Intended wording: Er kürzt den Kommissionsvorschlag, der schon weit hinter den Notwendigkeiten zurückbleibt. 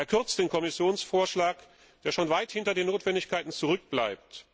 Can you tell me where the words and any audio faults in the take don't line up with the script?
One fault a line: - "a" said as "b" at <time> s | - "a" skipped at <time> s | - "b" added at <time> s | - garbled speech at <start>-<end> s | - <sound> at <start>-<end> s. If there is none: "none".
none